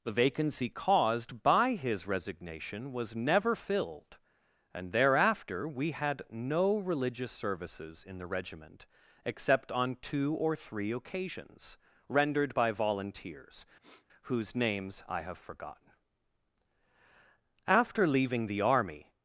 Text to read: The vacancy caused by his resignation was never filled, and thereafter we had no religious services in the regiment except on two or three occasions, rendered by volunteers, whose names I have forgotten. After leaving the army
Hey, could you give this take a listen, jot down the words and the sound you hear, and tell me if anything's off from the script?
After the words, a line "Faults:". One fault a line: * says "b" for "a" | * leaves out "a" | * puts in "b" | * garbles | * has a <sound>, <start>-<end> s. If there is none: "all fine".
The vacancy caused by his resignation was never filled, and thereafter we had no religious services in the regiment except on two or three occasions, rendered by volunteers, whose names I have forgotten. After leaving the army
Faults:
* has a sniff, 13.8-14.1 s